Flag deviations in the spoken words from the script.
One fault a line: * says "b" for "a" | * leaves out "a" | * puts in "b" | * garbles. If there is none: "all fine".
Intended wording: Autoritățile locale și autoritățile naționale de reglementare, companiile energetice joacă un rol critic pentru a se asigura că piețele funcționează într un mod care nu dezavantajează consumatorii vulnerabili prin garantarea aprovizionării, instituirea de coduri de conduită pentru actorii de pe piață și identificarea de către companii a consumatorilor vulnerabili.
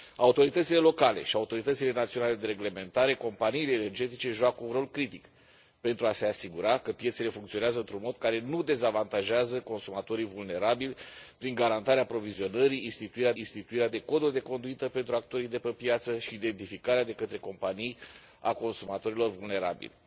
* puts in "instituirea"